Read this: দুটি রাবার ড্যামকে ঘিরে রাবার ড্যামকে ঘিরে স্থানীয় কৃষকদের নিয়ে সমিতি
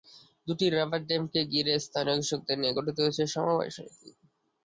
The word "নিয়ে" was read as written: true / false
false